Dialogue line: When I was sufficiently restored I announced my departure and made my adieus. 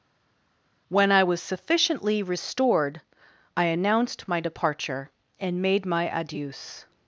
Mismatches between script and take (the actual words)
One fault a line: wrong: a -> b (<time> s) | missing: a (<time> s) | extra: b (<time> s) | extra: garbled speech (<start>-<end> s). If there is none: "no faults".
no faults